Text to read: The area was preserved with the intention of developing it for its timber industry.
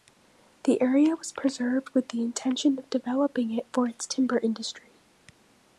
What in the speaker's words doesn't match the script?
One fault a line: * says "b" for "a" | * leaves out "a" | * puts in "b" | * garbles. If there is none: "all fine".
all fine